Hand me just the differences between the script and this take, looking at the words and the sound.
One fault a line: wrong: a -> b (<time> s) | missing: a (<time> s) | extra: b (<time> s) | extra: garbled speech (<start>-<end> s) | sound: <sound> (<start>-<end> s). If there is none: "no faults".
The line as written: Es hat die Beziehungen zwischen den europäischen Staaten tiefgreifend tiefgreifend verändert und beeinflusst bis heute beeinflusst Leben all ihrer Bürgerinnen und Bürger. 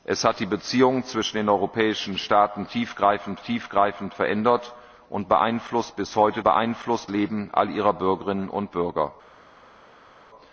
no faults